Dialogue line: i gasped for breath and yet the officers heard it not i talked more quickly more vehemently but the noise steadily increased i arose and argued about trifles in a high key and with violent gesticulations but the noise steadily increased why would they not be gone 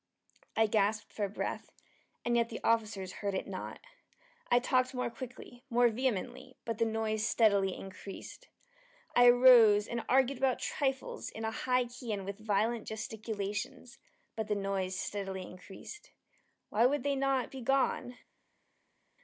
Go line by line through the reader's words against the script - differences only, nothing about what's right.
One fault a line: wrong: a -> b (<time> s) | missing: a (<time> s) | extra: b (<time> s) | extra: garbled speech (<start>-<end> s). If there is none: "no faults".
no faults